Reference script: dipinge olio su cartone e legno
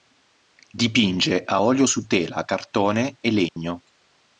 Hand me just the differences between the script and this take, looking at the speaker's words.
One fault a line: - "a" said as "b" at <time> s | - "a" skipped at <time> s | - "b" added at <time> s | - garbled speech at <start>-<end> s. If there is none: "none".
- "a" added at 1.4 s
- "tela" added at 2.1 s